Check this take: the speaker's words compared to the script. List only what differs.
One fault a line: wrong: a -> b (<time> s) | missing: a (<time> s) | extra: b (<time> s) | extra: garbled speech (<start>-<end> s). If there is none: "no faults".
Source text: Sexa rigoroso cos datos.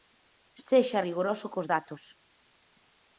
no faults